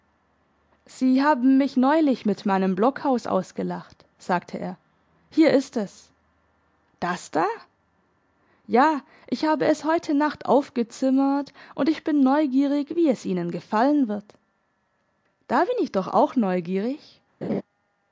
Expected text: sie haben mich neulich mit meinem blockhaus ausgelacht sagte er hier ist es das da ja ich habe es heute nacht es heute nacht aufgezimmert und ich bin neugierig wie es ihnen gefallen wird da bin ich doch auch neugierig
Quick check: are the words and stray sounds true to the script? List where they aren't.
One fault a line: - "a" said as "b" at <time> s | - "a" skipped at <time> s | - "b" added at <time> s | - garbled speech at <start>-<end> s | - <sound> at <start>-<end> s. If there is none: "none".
- "es heute nacht" skipped at 10.5 s
- laugh at 17.4-17.6 s